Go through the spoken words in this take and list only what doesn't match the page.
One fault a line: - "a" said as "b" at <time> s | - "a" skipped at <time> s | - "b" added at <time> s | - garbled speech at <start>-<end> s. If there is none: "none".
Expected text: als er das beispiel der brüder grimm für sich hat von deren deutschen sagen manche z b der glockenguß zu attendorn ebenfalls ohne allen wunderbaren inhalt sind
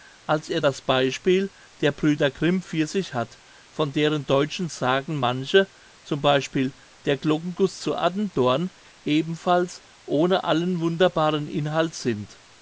none